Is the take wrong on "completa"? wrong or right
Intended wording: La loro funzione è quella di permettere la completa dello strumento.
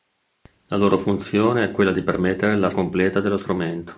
right